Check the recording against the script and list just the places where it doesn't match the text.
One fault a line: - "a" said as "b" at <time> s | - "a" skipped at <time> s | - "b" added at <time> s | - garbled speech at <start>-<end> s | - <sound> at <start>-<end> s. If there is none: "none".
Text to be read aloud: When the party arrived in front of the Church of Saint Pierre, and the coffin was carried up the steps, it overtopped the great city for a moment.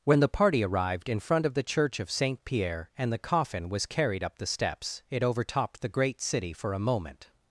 none